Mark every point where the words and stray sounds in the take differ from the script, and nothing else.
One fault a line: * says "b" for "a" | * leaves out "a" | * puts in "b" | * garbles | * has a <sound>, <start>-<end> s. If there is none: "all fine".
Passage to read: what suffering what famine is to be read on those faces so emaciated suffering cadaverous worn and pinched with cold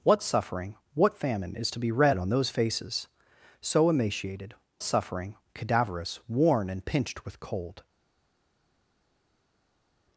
all fine